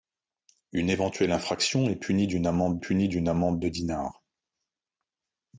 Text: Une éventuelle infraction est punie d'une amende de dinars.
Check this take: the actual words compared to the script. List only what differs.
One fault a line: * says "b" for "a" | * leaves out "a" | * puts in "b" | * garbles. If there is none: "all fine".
* puts in "punie d'une amende"